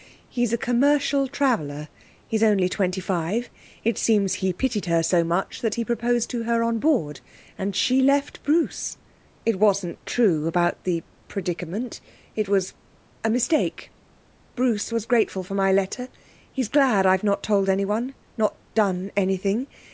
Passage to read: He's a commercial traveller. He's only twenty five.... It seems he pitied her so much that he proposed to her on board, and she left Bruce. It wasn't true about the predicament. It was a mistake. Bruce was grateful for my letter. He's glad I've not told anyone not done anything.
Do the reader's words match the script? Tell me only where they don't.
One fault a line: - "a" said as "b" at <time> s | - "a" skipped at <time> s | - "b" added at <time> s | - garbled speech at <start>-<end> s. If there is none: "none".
none